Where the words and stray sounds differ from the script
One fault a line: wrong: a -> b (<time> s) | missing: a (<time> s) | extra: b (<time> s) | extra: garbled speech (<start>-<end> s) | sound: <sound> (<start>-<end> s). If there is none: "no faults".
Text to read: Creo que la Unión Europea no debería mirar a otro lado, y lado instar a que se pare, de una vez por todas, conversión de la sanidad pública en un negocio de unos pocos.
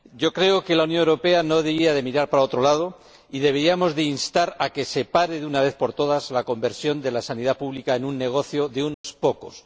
wrong: a -> para (2.3 s)
wrong: lado -> deberíamos (3.4 s)
extra: la (6.3 s)
sound: dropout (8.9-9.0 s)